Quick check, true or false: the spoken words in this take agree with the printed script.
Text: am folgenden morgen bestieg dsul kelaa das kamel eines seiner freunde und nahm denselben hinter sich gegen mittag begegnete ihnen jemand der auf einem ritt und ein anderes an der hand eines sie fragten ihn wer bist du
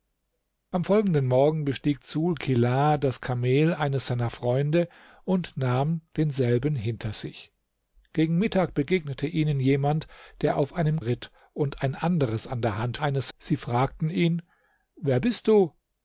true